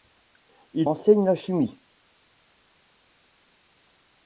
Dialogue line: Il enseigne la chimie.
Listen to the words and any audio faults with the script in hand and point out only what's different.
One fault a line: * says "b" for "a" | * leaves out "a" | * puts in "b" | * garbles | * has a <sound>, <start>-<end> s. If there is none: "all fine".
all fine